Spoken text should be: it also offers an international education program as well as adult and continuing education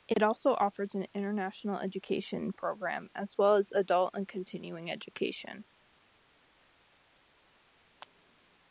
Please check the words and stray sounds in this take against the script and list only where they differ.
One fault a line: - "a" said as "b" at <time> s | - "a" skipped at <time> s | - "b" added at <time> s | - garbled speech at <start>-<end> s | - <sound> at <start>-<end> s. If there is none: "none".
none